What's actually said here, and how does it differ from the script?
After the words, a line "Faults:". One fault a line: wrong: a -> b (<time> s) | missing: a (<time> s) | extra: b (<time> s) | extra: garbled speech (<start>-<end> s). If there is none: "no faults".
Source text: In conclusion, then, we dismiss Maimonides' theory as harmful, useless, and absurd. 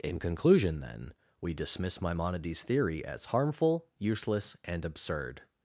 In conclusion, then, we dismiss Maimonides' theory as harmful, useless, and absurd.
Faults:
no faults